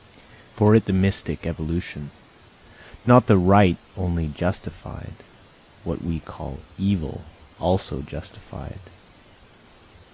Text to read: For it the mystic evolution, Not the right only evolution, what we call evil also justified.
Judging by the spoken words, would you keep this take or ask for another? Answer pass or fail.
fail